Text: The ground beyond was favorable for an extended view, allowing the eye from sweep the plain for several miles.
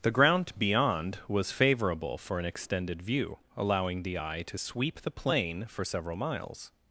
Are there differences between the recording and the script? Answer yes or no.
yes